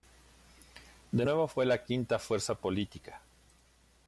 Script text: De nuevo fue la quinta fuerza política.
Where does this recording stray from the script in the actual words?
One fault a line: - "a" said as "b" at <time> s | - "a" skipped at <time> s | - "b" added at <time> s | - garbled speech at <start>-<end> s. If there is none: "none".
none